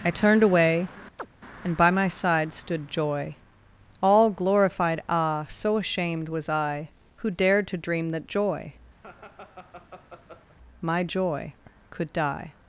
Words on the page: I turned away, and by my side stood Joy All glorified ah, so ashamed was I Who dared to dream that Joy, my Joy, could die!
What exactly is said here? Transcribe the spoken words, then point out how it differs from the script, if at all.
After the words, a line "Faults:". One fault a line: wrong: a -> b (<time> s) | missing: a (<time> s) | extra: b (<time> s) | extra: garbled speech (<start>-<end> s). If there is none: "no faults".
I turned away, and by my side stood Joy All glorified ah, so ashamed was I Who dared to dream that Joy, my Joy, could die!
Faults:
no faults